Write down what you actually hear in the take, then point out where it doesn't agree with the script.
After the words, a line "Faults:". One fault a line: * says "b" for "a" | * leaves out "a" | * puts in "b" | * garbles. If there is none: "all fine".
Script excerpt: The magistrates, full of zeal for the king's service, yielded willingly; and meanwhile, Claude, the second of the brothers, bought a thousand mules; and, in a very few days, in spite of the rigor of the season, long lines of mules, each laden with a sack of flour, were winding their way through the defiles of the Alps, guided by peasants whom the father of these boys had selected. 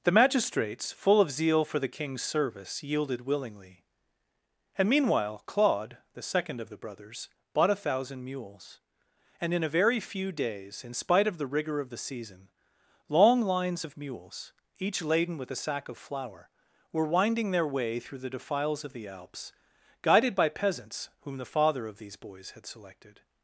The magistrates, full of zeal for the king's service, yielded willingly; and meanwhile, Claude, the second of the brothers, bought a thousand mules; and, in a very few days, in spite of the rigor of the season, long lines of mules, each laden with a sack of flour, were winding their way through the defiles of the Alps, guided by peasants whom the father of these boys had selected.
Faults:
all fine